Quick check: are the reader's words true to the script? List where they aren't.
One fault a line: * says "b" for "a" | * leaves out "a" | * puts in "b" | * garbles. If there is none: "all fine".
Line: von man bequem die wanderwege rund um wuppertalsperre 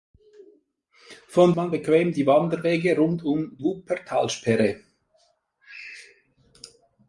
all fine